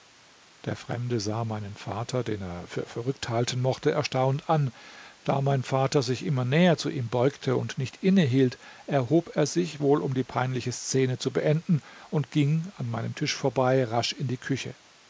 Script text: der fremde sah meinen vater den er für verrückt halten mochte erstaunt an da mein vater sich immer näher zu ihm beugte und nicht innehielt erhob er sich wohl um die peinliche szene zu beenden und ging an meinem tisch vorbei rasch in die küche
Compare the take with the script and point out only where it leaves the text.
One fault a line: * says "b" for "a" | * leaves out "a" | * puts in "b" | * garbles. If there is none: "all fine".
all fine